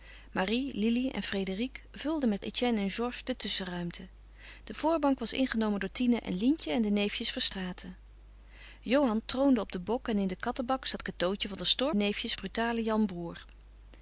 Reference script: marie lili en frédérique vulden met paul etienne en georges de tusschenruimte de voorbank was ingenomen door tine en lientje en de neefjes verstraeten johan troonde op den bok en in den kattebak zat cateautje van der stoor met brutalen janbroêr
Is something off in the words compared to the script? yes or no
yes